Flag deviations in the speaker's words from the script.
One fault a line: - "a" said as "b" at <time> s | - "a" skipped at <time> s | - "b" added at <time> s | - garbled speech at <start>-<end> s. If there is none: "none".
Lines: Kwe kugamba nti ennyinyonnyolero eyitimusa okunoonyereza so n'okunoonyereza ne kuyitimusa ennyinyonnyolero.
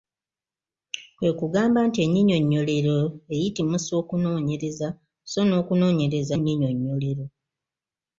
- "ne kuyitimusa" skipped at 6.3 s